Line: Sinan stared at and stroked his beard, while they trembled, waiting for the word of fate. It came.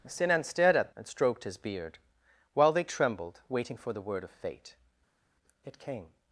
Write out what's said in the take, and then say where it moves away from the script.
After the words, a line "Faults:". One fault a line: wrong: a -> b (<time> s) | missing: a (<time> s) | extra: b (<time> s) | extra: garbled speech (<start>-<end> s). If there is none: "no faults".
Sinan stared at and stroked his beard, while they trembled, waiting for the word of fate. It came.
Faults:
no faults